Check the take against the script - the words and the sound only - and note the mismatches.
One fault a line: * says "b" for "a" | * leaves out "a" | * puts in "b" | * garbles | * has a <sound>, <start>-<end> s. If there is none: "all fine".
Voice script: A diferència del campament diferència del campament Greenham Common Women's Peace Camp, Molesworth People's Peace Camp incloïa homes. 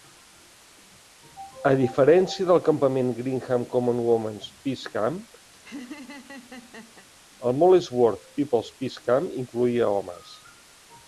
* leaves out "diferència del campament"
* has a laugh, 5.5-7.1 s
* puts in "el"